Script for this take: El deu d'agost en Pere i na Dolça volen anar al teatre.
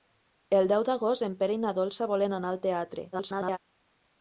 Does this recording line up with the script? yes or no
no